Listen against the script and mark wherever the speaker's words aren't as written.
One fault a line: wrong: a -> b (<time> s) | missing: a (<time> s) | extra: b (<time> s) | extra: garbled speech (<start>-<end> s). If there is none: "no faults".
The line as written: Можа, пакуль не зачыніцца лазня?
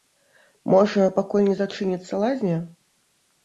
no faults